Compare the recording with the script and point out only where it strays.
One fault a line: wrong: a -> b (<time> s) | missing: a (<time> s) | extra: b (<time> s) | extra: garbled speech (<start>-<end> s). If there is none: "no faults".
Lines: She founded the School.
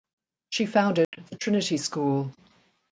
extra: Trinity (1.4 s)